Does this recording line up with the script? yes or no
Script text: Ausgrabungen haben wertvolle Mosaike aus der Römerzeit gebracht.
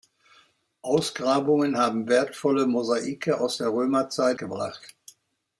yes